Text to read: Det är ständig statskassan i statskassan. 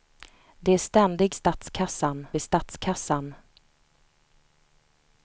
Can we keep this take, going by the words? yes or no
yes